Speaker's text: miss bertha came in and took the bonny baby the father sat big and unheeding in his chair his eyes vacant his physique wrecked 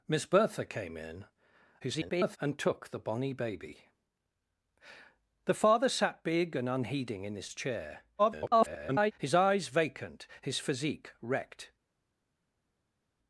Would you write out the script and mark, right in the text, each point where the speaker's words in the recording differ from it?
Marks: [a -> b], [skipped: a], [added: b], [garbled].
miss bertha came in [garbled] and took the bonny baby the father sat big and unheeding in his chair [garbled] his eyes vacant his physique wrecked